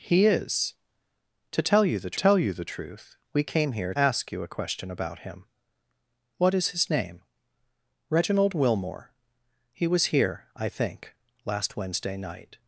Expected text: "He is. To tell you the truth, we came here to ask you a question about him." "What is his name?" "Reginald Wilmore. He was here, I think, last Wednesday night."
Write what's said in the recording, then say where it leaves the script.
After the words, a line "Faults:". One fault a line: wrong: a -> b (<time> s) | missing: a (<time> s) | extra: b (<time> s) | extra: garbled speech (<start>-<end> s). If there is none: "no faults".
"He is. To tell you the tell you the truth, we came here ask you a question about him." "What is his name?" "Reginald Wilmore. He was here, I think, last Wednesday night."
Faults:
extra: tell you the (2.1 s)
missing: to (3.9 s)